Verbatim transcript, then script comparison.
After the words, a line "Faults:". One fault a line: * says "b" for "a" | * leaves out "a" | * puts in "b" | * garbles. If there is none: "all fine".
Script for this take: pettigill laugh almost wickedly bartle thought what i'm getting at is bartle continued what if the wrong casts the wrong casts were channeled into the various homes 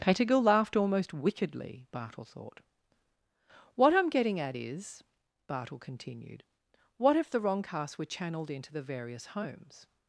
pettigill laughed almost wickedly bartle thought what i'm getting at is bartle continued what if the wrong casts were channeled into the various homes
Faults:
* says "laughed" for "laugh"
* leaves out "the wrong casts"